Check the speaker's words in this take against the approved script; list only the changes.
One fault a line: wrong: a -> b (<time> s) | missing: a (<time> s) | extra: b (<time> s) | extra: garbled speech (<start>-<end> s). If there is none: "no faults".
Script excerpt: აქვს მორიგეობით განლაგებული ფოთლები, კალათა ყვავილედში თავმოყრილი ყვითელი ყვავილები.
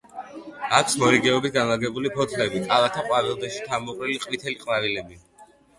no faults